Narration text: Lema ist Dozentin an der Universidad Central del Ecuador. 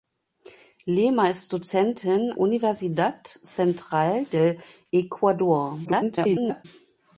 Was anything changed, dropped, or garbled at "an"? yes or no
yes